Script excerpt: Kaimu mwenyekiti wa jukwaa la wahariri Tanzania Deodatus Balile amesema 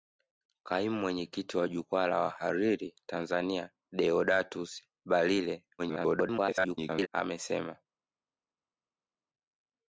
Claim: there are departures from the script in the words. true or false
true